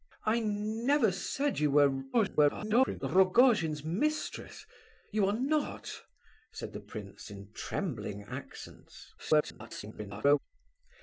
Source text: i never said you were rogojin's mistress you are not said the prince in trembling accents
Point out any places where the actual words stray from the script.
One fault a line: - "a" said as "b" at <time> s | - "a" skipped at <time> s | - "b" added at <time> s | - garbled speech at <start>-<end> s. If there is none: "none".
- garbled speech at 2.1-3.0 s
- garbled speech at 9.2-10.4 s